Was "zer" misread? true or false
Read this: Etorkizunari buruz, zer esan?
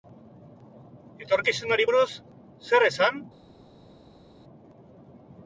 false